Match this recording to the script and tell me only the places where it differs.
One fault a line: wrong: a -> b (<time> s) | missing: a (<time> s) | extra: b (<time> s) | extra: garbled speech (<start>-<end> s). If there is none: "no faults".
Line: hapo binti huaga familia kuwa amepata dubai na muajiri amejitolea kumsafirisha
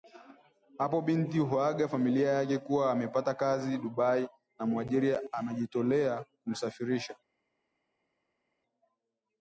extra: yake (2.3 s)
extra: kazi (3.3 s)